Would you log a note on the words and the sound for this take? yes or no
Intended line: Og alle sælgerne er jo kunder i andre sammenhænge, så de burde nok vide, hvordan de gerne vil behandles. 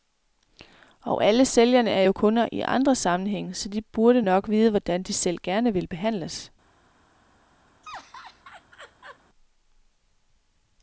yes